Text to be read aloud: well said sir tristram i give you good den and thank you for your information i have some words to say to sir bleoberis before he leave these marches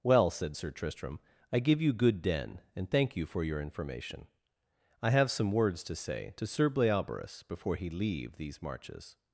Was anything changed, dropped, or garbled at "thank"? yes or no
no